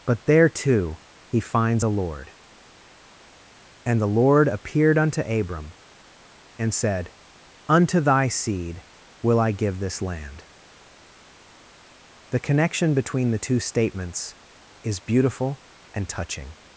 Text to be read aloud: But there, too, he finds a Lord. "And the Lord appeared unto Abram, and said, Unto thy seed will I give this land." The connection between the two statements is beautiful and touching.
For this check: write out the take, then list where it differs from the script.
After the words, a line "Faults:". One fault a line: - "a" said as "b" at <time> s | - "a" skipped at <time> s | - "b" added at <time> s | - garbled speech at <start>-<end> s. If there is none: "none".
But there, too, he finds a Lord. "And the Lord appeared unto Abram, and said, Unto thy seed will I give this land." The connection between the two statements is beautiful and touching.
Faults:
none